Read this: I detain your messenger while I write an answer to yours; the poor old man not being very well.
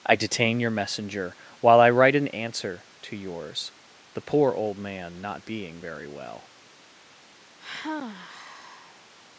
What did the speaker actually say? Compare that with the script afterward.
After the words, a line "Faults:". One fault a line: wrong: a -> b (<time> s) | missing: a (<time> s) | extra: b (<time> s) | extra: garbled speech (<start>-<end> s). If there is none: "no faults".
I detain your messenger while I write an answer to yours; the poor old man not being very well.
Faults:
no faults